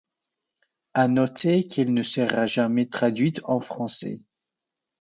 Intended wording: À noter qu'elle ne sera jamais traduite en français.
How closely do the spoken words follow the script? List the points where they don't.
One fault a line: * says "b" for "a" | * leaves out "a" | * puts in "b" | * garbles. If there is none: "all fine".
all fine